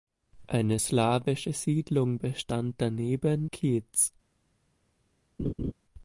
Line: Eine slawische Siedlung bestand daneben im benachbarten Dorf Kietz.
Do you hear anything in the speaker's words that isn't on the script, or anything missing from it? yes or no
yes